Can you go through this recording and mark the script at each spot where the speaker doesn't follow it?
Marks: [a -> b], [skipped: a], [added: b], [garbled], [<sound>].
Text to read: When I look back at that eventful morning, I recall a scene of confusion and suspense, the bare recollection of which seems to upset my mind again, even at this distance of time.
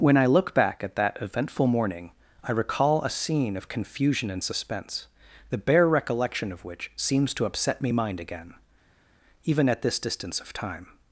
When I look back at that eventful morning, I recall a scene of confusion and suspense, the bare recollection of which seems to upset [my -> me] mind again, even at this distance of time.